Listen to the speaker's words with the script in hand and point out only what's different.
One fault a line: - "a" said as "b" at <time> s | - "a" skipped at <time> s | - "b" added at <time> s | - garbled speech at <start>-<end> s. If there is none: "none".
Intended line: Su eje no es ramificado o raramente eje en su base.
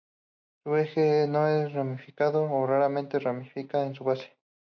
- "eje" said as "ramifica" at 3.2 s